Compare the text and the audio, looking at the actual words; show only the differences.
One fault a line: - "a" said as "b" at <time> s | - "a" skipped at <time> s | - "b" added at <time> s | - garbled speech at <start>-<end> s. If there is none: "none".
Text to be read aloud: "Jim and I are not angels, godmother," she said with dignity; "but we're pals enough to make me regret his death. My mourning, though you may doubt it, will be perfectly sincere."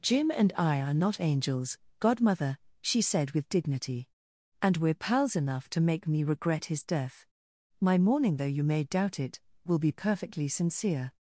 - "but" said as "and" at 4.6 s